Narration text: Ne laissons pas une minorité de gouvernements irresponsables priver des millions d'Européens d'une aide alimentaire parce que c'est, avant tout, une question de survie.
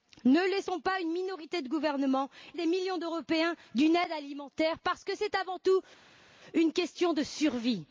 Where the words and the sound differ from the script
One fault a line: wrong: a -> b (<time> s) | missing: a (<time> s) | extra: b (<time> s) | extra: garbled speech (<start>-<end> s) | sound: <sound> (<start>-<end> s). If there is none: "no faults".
missing: irresponsables priver (2.3 s)